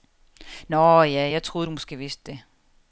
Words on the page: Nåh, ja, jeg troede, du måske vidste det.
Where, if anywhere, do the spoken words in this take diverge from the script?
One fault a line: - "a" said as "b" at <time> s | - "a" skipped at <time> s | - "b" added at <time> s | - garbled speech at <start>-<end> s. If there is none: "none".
none